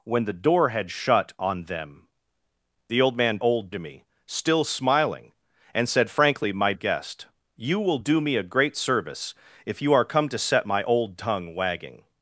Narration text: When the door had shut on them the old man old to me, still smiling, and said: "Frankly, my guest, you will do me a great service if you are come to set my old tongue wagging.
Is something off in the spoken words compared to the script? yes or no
no